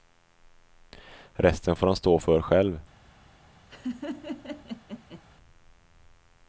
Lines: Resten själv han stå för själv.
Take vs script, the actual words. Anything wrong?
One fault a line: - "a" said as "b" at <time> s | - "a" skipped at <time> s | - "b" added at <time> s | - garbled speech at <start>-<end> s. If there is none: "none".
- "själv" said as "får" at 1.8 s